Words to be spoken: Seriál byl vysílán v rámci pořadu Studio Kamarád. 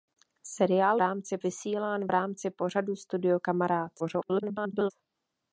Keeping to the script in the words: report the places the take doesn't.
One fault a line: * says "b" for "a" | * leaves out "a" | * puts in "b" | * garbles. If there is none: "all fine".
* says "rámci" for "byl"
* garbles